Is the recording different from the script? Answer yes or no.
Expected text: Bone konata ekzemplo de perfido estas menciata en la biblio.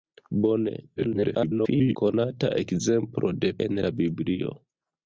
yes